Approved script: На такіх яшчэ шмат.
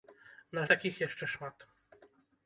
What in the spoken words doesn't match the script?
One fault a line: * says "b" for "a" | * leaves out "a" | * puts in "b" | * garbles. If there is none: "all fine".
all fine